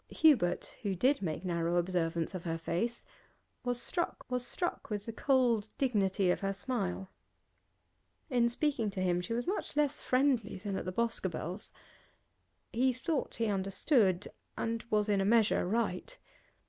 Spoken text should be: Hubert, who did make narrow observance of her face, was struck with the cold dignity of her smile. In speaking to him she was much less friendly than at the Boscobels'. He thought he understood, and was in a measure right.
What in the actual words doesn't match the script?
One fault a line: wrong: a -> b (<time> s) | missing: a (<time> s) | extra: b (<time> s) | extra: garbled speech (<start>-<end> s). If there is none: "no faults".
extra: was struck (4.3 s)